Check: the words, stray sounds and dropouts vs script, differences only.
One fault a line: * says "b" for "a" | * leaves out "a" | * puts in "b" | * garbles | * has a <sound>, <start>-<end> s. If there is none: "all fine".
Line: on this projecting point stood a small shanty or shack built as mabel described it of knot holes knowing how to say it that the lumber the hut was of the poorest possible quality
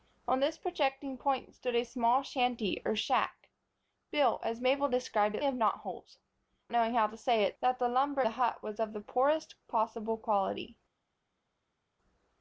all fine